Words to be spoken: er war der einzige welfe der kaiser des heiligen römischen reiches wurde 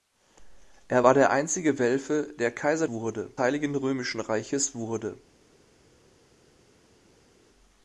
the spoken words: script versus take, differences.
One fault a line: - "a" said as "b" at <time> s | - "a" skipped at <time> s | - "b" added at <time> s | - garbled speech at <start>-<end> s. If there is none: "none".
- "des" said as "wurde" at 2.9 s